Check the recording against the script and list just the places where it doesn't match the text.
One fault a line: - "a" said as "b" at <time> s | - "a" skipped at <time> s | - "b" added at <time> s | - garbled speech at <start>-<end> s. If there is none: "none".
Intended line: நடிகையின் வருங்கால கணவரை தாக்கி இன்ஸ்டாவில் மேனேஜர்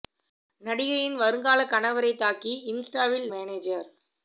none